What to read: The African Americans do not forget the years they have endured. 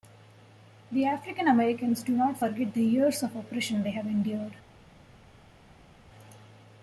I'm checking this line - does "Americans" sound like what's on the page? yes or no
yes